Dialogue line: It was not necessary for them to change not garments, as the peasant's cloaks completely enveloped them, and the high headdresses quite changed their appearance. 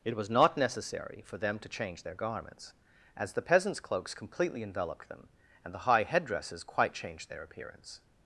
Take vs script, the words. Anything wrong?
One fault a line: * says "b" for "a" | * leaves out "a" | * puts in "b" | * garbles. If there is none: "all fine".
* says "their" for "not"